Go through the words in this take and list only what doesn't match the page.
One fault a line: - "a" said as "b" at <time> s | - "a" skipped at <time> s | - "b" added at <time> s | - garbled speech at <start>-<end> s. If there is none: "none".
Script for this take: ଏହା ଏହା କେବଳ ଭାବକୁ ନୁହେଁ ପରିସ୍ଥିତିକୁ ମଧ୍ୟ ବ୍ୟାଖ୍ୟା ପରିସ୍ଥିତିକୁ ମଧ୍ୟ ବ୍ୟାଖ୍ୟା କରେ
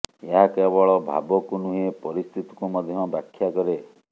- "ଏହା" skipped at 0.5 s
- "ପରିସ୍ଥିତିକୁ ମଧ୍ୟ ବ୍ୟାଖ୍ୟା" skipped at 3.5 s